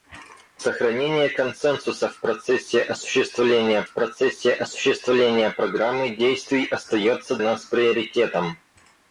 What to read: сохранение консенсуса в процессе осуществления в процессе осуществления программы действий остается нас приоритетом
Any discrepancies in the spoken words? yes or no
no